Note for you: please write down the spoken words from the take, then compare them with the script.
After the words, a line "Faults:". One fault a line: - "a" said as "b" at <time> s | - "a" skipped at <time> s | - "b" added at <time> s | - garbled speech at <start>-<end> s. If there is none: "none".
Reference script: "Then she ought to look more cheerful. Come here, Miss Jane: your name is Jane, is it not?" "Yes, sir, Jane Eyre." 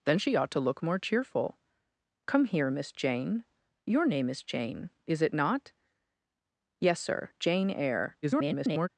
"Then she ought to look more cheerful. Come here, Miss Jane: your name is Jane, is it not?" "Yes, sir, Jane Eyre." [garbled]
Faults:
- garbled speech at 8.2-8.9 s